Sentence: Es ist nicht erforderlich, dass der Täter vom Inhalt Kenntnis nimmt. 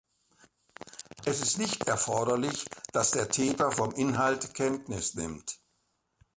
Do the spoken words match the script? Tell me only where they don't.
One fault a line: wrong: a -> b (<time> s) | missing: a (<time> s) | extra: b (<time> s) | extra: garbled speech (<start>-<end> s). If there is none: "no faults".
no faults